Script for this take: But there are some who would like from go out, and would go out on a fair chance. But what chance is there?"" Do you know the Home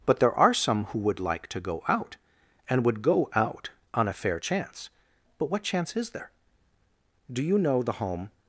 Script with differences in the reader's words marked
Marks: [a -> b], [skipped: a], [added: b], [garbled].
But there are some who would like [from -> to] go out, and would go out on a fair chance. But what chance is there?"" Do you know the Home